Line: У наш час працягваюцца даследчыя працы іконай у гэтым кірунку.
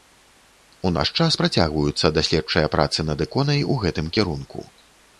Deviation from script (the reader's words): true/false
true